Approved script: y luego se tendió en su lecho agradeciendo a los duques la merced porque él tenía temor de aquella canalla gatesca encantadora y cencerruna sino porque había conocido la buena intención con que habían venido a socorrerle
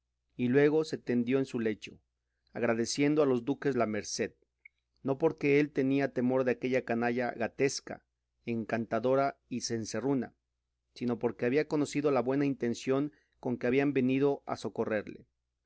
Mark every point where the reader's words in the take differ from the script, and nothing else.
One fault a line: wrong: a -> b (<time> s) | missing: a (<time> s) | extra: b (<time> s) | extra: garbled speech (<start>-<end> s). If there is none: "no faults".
extra: no (5.0 s)